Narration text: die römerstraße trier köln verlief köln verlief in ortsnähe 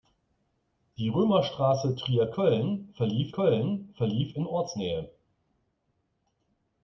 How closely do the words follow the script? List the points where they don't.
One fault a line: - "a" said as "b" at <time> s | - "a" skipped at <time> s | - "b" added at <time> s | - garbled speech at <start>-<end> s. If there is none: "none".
none